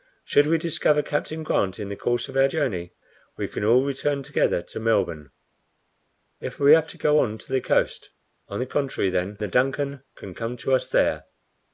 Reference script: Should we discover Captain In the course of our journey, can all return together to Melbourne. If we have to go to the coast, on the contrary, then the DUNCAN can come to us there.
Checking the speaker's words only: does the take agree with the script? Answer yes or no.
no